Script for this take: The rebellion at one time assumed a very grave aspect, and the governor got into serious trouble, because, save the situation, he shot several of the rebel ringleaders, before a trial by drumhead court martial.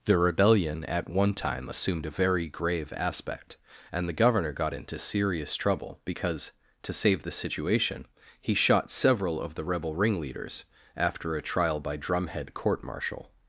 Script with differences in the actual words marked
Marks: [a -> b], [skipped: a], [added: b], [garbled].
The rebellion at one time assumed a very grave aspect, and the governor got into serious trouble, because, [added: to] save the situation, he shot several of the rebel ringleaders, [before -> after] a trial by drumhead court martial.